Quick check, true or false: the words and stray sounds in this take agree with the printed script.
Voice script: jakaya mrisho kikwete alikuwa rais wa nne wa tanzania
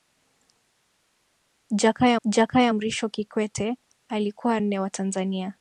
false